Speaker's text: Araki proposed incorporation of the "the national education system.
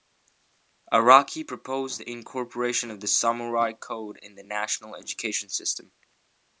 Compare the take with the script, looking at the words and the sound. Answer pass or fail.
fail